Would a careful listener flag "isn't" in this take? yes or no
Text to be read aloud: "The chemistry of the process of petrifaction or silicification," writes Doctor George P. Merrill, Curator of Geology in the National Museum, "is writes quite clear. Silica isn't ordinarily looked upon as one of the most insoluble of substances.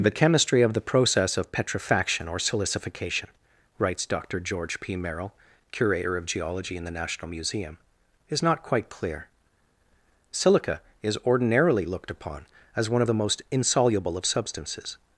yes